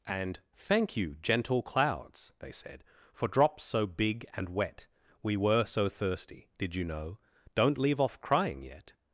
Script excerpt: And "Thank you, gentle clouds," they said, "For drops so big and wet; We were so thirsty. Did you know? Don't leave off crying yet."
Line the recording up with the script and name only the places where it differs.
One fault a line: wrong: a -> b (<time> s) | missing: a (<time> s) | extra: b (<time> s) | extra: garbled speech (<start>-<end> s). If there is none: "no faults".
no faults